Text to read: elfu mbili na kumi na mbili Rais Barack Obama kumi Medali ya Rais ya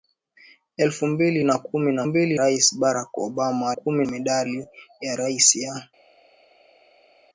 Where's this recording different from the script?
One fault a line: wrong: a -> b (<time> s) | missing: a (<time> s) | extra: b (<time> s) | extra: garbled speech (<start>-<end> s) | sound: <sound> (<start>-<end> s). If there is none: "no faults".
no faults